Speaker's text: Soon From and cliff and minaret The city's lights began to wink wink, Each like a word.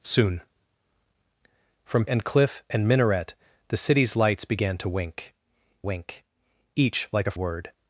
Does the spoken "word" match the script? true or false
true